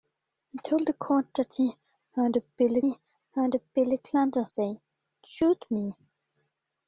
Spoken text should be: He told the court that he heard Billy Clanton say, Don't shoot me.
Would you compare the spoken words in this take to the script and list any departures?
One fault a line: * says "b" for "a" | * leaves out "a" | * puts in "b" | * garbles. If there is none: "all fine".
* puts in "he heard Billy"
* leaves out "Don't"